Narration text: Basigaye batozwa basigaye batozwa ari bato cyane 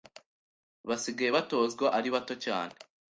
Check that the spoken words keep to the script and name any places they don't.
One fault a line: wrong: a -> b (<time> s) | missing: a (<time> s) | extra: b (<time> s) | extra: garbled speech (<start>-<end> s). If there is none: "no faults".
missing: basigaye batozwa (1.9 s)